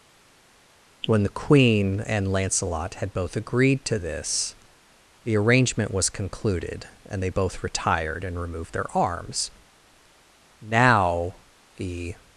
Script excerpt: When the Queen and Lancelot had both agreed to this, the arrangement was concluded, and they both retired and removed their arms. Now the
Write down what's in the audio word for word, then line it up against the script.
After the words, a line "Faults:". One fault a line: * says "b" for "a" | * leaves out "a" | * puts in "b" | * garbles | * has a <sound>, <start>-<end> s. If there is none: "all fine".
When the Queen and Lancelot had both agreed to this, the arrangement was concluded, and they both retired and removed their arms. Now the
Faults:
all fine